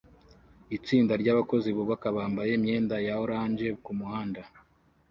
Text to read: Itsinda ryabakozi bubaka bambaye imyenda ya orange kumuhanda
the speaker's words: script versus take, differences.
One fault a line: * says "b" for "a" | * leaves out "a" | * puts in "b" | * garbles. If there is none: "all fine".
all fine